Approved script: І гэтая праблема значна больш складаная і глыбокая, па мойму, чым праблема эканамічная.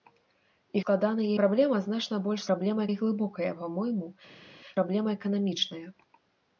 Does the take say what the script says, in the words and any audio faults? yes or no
no